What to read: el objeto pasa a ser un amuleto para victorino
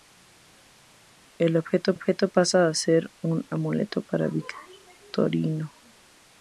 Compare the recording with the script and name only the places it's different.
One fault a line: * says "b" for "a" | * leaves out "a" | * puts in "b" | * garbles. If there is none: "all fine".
* puts in "objeto"